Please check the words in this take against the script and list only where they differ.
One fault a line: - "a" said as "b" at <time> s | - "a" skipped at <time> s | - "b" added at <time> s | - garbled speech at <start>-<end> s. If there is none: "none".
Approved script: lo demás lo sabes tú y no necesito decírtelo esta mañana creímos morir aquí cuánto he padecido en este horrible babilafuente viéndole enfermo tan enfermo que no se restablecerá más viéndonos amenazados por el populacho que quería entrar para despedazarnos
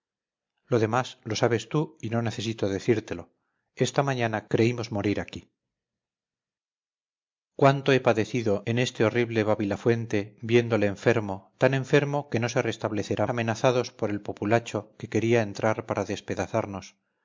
- "más viéndonos" skipped at 13.3 s